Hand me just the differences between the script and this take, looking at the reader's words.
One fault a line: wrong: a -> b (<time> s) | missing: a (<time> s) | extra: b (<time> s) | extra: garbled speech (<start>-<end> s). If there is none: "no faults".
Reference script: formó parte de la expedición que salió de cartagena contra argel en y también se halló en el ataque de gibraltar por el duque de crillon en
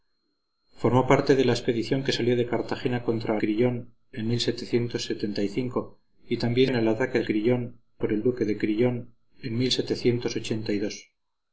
wrong: argel -> crillon (3.4 s)
missing: se halló (6.7 s)
wrong: gibraltar -> crillon (7.2 s)